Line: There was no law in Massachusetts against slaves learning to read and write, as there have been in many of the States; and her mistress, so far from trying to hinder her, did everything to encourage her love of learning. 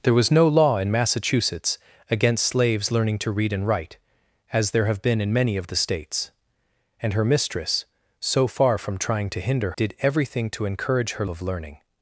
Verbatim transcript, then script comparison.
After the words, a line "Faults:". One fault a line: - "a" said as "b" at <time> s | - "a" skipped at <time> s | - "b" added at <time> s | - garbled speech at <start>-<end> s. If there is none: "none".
There was no law in Massachusetts against slaves learning to read and write, as there have been in many of the States; and her mistress, so far from trying to hinder did everything to encourage her of learning.
Faults:
- "her" skipped at 9.7 s
- "love" skipped at 11.2 s